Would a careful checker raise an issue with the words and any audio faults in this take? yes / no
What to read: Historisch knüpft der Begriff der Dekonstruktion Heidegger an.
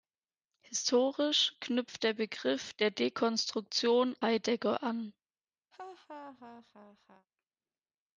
yes